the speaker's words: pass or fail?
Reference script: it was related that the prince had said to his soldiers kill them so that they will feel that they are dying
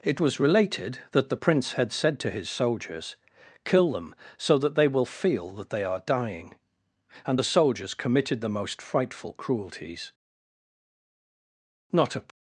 fail